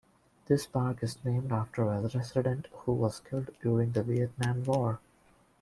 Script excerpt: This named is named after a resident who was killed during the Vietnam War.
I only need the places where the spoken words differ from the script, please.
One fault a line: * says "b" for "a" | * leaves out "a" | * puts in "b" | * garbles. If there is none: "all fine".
* says "park" for "named"